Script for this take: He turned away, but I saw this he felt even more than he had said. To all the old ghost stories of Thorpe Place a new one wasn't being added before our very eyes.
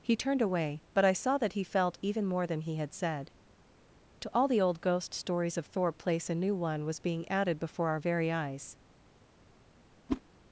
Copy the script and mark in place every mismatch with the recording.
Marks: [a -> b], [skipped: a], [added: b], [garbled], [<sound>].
He turned away, but I saw [this -> that] he felt even more than he had said. To all the old ghost stories of Thorpe Place a new one [wasn't -> was] being added before our very eyes. [whoosh]